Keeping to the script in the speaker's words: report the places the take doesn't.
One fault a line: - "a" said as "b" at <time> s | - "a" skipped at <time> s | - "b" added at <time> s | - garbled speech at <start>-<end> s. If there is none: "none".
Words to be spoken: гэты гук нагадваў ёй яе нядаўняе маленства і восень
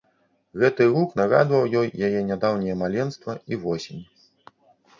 none